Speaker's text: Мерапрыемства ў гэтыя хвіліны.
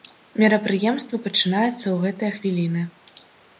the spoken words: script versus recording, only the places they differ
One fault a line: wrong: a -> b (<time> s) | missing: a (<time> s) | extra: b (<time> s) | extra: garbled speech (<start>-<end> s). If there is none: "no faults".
extra: пачынаецца (1.3 s)